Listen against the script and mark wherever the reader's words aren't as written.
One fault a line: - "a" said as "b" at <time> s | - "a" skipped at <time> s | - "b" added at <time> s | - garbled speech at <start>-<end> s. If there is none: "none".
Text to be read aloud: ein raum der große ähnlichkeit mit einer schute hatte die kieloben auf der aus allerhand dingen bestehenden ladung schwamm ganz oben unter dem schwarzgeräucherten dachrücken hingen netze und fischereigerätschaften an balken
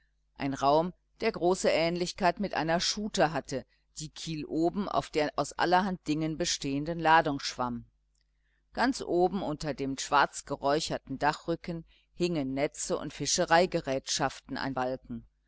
none